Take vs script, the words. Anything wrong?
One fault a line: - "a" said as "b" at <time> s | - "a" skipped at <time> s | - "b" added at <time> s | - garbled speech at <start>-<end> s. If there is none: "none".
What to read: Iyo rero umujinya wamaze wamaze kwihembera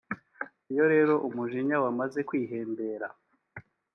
- "wamaze" skipped at 2.2 s